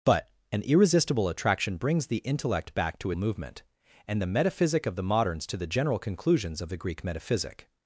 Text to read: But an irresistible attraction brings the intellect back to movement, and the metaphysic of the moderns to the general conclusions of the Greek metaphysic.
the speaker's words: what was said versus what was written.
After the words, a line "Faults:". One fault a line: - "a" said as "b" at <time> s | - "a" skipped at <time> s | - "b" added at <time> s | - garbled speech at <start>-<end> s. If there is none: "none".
But an irresistible attraction brings the intellect back to movement, and the metaphysic of the moderns to the general conclusions of the Greek metaphysic.
Faults:
none